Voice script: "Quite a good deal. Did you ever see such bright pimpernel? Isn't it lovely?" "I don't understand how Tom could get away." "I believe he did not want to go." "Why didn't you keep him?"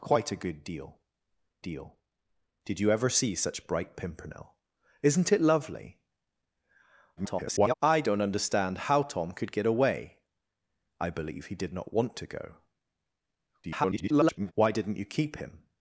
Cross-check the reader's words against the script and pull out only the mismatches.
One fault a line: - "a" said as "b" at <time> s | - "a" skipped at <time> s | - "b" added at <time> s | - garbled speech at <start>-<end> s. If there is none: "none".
- "deal" added at 1.6 s
- garbled speech at 7.2-7.7 s
- garbled speech at 13.6-14.5 s